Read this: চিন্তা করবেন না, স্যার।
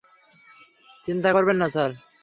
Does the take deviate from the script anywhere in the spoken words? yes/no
no